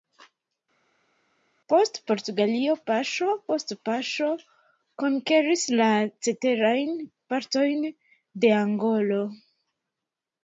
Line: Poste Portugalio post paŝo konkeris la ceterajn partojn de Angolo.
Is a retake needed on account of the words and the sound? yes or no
yes